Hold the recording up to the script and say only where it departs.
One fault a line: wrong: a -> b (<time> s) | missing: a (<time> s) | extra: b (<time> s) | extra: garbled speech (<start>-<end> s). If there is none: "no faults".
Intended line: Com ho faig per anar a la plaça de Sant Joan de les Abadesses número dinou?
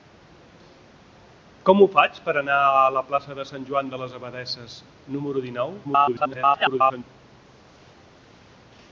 extra: garbled speech (5.8-7.0 s)